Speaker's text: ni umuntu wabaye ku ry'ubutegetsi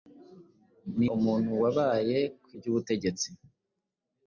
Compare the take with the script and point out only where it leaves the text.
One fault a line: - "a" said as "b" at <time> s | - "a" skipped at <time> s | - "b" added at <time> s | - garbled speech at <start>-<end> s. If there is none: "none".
none